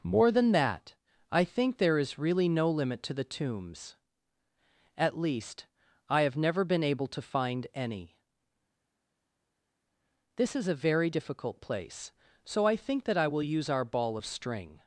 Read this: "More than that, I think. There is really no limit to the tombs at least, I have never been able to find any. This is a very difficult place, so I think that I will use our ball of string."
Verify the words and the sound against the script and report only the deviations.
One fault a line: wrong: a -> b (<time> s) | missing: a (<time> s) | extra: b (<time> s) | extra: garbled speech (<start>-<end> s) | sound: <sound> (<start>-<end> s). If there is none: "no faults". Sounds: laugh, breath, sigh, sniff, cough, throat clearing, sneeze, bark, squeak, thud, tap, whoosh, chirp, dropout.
no faults